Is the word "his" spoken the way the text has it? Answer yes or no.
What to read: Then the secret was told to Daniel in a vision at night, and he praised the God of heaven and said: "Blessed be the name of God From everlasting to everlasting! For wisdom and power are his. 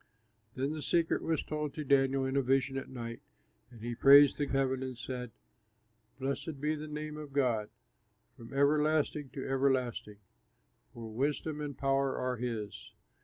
yes